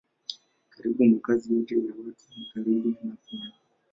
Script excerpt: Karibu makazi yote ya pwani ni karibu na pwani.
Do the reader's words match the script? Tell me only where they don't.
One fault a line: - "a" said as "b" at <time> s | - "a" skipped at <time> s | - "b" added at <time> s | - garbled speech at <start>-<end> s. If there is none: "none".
- "pwani" said as "watu" at 2.0 s